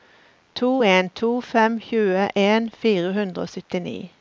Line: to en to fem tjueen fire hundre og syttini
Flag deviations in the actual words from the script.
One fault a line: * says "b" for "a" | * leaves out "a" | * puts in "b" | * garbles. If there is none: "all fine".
all fine